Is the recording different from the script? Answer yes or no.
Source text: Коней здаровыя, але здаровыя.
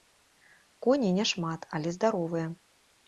yes